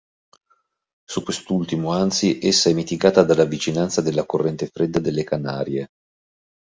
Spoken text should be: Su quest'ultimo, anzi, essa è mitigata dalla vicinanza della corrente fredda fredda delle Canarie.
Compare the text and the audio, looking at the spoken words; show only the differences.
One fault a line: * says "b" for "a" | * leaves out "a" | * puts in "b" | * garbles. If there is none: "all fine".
* leaves out "fredda"